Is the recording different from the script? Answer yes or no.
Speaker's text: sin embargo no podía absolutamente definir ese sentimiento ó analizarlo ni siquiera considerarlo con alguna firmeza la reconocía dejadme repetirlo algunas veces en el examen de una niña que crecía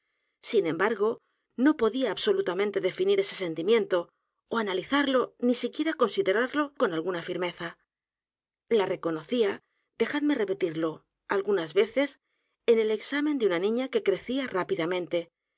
no